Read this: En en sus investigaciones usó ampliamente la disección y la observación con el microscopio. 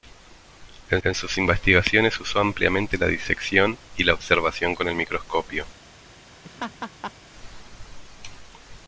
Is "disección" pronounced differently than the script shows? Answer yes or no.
no